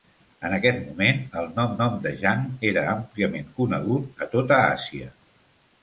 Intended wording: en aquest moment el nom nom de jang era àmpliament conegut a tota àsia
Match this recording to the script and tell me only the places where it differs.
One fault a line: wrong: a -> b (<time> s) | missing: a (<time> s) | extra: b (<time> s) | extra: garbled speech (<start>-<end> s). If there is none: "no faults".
no faults